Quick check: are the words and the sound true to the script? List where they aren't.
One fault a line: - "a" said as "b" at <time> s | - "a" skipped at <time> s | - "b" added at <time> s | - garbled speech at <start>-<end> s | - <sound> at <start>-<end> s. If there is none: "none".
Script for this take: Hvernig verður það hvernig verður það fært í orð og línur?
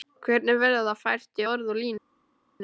- "hvernig verður það" skipped at 1.0 s